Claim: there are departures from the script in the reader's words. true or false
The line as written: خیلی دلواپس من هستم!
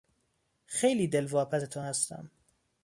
true